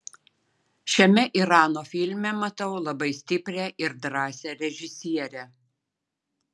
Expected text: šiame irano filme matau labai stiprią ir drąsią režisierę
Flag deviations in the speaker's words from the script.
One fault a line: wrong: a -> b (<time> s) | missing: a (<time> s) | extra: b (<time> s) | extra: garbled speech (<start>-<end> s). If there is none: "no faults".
no faults